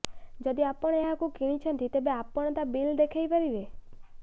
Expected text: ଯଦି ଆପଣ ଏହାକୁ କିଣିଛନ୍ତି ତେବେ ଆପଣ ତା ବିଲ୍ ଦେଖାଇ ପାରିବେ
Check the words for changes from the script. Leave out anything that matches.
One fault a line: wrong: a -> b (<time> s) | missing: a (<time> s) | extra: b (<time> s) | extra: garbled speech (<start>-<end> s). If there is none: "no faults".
no faults